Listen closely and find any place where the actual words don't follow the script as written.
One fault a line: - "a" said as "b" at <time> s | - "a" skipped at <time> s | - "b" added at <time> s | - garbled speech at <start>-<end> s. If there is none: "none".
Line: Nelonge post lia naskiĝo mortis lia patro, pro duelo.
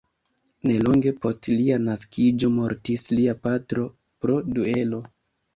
none